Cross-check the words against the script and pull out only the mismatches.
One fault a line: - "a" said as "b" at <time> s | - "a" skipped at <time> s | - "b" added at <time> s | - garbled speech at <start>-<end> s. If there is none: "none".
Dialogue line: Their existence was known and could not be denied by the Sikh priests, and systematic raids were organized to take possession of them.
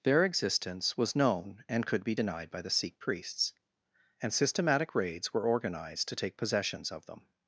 - "not" skipped at 2.0 s
- "possession" said as "possessions" at 6.4 s